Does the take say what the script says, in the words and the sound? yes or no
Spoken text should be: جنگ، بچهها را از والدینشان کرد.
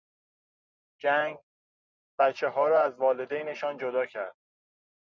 no